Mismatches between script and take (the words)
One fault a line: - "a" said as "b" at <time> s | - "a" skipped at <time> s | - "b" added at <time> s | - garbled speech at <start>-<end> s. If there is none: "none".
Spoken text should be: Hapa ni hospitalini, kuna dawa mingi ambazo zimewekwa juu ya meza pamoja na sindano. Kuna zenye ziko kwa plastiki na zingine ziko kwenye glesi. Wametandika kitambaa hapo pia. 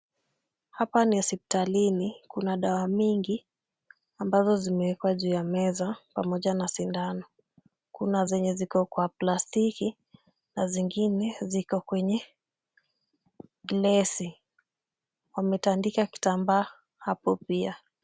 none